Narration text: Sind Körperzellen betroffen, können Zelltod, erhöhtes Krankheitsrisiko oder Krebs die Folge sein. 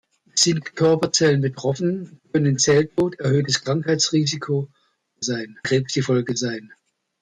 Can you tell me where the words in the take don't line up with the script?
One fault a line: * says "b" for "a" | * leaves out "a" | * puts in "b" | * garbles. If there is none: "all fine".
* says "sein" for "oder"